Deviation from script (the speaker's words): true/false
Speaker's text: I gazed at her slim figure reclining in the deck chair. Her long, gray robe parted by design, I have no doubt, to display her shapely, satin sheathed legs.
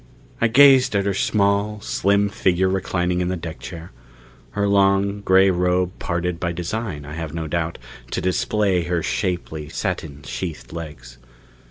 true